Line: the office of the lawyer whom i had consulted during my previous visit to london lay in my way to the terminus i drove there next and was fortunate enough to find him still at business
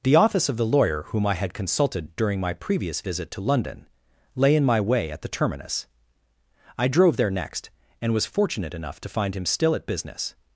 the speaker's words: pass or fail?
fail